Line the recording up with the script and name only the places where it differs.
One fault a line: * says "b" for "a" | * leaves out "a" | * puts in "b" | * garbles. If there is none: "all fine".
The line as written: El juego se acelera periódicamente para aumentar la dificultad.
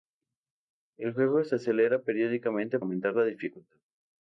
* leaves out "para"